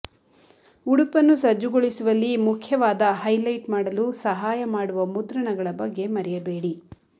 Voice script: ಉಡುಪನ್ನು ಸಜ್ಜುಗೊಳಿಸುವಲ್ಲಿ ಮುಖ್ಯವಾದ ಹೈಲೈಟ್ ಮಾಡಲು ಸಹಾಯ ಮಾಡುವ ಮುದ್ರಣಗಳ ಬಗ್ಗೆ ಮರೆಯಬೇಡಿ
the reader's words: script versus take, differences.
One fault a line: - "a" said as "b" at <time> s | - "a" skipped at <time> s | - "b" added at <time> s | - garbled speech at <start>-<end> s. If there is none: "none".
none